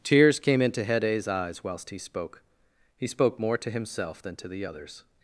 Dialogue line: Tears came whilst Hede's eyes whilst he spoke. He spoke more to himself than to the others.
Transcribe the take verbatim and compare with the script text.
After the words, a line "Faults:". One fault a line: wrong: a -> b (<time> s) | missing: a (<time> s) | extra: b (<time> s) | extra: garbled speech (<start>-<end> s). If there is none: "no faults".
Tears came into Hede's eyes whilst he spoke. He spoke more to himself than to the others.
Faults:
wrong: whilst -> into (0.6 s)